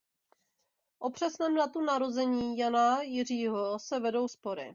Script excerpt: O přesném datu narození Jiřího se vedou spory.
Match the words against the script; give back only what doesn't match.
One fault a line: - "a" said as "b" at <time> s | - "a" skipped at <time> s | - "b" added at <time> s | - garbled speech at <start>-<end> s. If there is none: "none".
- "Jana" added at 2.6 s